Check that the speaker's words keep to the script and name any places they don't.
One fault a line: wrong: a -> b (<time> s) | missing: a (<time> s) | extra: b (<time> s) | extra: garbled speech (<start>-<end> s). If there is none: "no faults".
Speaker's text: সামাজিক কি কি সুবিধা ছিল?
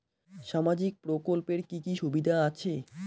extra: প্রকল্পের (1.0 s)
wrong: ছিল -> আছে (2.5 s)